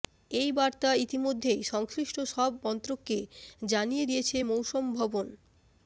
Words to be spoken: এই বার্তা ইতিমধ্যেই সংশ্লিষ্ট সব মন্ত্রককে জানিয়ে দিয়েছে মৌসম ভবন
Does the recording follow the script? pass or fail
pass